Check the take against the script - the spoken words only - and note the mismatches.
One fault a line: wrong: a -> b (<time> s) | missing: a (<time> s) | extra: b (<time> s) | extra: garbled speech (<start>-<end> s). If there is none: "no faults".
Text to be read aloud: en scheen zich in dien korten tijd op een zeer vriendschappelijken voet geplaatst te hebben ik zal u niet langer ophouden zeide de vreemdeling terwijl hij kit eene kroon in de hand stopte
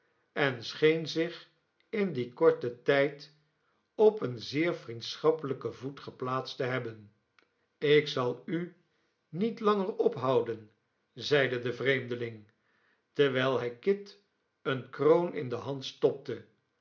no faults